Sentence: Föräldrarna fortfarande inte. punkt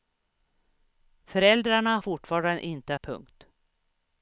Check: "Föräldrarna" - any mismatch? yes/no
no